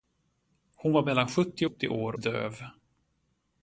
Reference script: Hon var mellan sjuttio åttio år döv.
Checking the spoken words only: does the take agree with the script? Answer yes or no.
yes